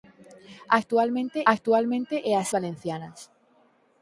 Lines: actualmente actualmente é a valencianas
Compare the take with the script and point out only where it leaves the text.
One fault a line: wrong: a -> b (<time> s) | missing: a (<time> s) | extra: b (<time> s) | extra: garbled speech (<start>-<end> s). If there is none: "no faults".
no faults